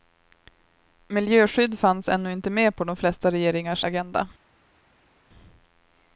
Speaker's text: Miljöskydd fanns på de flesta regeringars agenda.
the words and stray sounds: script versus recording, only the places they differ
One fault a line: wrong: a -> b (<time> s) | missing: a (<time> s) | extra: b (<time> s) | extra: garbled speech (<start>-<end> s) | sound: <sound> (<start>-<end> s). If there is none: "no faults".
extra: ännu inte med (2.1 s)